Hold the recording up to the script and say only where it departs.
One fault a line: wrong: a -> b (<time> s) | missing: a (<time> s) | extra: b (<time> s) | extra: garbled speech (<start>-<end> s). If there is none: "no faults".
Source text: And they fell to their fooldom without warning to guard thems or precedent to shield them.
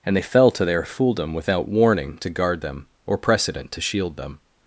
wrong: thems -> them (2.6 s)